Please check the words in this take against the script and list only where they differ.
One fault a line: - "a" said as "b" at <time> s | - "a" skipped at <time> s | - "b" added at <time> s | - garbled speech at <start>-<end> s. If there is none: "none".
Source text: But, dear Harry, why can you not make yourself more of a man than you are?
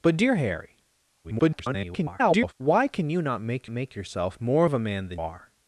- garbled speech at 1.2-2.5 s
- "make" added at 3.7 s
- "you" skipped at 5.2 s